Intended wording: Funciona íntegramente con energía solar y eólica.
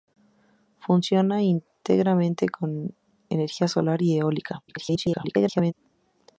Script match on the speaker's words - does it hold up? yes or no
no